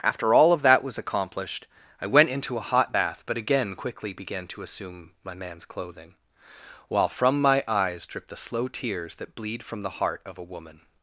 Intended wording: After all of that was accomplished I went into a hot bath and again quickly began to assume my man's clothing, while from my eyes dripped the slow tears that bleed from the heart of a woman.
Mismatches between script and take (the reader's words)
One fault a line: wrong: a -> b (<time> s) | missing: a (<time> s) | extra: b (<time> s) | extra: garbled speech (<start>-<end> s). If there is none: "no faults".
wrong: and -> but (3.3 s)